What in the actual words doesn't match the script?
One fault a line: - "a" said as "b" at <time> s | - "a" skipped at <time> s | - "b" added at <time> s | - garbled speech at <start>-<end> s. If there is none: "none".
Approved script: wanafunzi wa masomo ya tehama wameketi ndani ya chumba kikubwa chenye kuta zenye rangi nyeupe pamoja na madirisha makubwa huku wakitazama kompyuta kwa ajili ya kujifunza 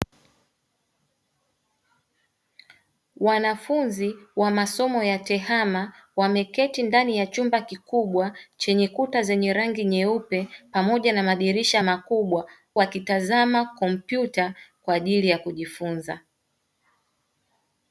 - "huku" skipped at 12.5 s